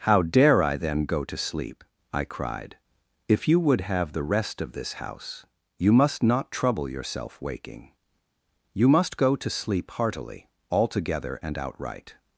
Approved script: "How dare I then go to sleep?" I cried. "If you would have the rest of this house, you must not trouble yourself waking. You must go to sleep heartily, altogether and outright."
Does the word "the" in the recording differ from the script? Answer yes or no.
no